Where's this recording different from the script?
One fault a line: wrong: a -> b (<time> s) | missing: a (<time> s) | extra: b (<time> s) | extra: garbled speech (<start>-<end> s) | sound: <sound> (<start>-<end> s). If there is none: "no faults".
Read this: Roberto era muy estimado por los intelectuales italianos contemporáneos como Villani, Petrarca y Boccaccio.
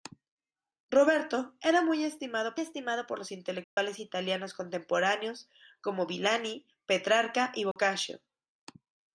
extra: estimado (2.6 s)
sound: dropout (3.6-3.8 s)
sound: dropout (7.7-7.8 s)